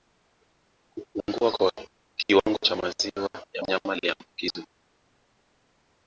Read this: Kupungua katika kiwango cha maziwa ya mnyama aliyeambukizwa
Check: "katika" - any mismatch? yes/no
yes